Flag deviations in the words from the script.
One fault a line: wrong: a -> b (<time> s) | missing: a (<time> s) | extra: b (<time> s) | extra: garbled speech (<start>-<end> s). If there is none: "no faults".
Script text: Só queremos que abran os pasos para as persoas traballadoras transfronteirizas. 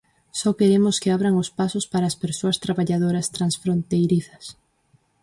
no faults